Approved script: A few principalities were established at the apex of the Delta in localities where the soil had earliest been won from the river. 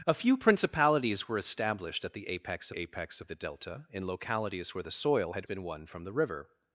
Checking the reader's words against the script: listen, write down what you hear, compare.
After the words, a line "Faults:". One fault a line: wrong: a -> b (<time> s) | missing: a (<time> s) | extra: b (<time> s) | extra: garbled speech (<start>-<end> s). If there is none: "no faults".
A few principalities were established at the apex apex of the Delta in localities where the soil had been won from the river.
Faults:
extra: apex (2.7 s)
missing: earliest (5.5 s)